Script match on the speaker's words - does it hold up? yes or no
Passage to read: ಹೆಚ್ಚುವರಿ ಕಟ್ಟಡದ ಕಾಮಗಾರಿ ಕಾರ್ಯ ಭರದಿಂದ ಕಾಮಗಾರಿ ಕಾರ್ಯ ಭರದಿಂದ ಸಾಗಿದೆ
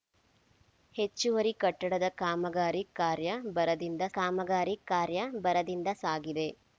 yes